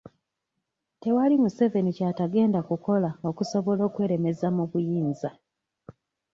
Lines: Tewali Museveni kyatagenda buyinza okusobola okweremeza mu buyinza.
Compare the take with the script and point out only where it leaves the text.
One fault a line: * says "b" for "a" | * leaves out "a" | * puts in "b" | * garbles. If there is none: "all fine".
* says "kukola" for "buyinza"